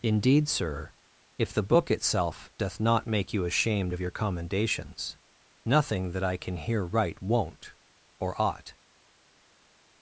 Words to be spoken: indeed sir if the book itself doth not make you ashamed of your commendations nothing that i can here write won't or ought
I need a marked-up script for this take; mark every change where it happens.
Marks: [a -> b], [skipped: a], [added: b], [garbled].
indeed sir if the book itself doth not make you ashamed of your commendations nothing that i can here write won't or ought